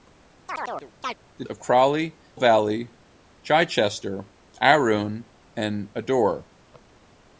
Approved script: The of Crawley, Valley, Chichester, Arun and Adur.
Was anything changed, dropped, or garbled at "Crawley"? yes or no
no